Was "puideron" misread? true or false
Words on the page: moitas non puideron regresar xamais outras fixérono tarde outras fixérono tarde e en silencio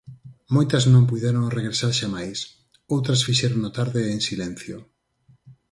false